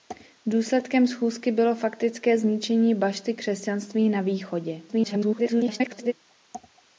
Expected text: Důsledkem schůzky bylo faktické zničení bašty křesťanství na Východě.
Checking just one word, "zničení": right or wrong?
right